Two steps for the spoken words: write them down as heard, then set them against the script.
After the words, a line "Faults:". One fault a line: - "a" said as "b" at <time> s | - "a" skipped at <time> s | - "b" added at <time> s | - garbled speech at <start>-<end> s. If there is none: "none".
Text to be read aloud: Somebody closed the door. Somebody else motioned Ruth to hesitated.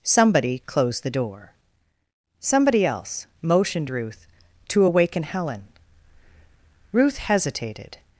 Somebody closed the door. Somebody else motioned Ruth to awaken Helen. Ruth hesitated.
Faults:
- "awaken Helen Ruth" added at 4.8 s